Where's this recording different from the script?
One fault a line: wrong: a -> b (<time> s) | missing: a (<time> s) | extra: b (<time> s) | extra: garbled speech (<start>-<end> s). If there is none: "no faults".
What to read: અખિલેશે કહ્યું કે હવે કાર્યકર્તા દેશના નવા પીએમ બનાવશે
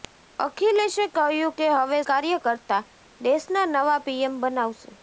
no faults